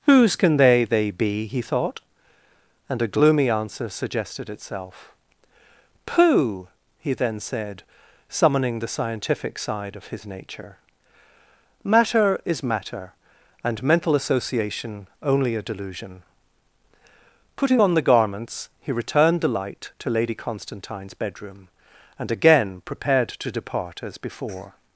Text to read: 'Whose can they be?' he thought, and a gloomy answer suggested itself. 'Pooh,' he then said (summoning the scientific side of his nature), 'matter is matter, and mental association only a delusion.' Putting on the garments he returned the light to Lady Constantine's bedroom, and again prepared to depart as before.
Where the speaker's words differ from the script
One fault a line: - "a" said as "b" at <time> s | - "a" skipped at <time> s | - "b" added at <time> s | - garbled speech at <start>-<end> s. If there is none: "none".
- "they" added at 0.8 s